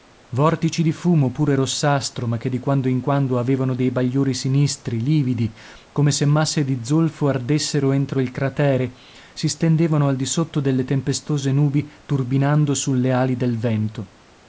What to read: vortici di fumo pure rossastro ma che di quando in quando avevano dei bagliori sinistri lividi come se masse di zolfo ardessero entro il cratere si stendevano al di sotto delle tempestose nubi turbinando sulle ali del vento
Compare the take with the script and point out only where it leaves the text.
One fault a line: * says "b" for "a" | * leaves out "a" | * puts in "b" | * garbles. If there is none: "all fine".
all fine